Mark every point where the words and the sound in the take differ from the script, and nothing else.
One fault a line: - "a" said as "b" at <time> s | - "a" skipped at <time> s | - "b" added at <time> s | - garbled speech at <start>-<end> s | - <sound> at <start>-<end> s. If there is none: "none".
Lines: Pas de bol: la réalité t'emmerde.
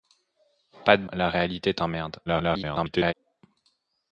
- "bol" skipped at 1.1 s
- garbled speech at 2.3-3.1 s